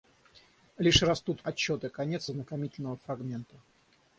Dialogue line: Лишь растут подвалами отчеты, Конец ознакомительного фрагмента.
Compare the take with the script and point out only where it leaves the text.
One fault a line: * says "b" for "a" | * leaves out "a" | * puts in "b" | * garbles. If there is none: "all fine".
* leaves out "подвалами"